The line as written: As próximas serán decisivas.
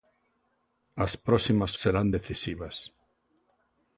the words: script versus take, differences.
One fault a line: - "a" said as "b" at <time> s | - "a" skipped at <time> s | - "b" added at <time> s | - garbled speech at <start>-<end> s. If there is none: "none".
none